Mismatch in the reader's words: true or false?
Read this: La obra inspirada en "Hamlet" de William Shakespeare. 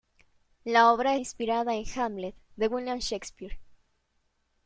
false